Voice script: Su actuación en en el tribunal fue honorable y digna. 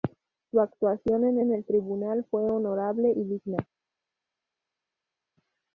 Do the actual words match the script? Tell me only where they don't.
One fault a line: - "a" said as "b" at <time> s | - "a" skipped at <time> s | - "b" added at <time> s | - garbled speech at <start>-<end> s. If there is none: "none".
none